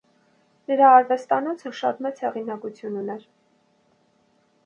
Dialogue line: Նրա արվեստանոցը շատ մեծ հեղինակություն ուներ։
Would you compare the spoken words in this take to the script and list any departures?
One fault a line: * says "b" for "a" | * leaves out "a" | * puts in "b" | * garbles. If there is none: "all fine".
all fine